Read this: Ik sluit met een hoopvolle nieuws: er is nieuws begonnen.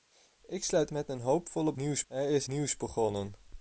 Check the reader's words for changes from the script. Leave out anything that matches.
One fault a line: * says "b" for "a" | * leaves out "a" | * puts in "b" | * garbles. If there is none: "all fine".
all fine